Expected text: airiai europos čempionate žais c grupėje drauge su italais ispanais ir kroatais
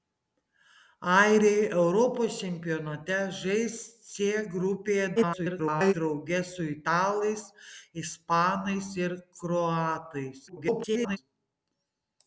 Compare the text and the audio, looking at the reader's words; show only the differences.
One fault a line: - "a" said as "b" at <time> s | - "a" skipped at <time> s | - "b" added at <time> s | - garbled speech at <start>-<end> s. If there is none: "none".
- garbled speech at 5.2-5.9 s
- garbled speech at 10.5-11.2 s